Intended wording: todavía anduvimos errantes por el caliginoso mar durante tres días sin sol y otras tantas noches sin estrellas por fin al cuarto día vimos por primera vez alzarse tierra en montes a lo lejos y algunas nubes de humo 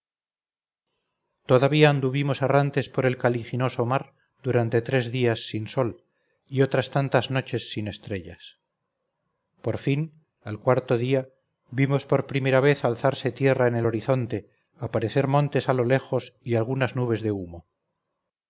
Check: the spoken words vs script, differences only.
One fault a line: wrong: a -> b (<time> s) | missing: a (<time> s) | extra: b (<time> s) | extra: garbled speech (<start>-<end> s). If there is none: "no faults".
extra: el horizonte aparecer (13.8 s)